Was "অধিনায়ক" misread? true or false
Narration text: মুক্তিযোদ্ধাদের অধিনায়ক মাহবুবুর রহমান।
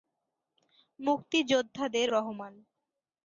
true